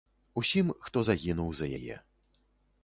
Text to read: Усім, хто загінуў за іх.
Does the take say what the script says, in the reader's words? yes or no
no